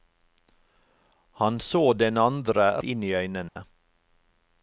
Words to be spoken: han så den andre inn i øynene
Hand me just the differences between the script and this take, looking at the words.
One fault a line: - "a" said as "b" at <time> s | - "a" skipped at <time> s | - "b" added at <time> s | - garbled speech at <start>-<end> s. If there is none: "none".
none